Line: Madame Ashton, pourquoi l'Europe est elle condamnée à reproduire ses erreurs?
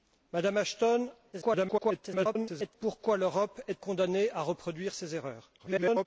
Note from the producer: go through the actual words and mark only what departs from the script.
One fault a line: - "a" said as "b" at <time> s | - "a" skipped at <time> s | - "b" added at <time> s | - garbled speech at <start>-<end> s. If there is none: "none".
- garbled speech at 1.3-2.7 s
- "elle" skipped at 3.8 s
- garbled speech at 5.6-6.1 s